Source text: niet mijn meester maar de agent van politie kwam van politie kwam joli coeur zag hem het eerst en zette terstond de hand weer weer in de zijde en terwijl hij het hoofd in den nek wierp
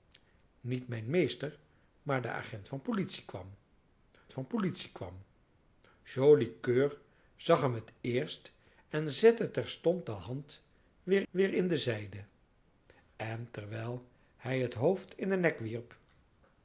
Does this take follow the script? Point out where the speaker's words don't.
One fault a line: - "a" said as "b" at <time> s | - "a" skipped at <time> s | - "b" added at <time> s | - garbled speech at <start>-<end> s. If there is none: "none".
none